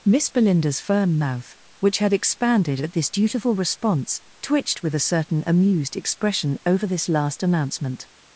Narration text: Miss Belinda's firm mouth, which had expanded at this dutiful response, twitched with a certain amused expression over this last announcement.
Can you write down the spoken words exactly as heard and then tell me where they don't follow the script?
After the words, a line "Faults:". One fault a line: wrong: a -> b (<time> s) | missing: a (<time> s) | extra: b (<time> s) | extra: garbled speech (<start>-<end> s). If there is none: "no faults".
Miss Belinda's firm mouth, which had expanded at this dutiful response, twitched with a certain amused expression over this last announcement.
Faults:
no faults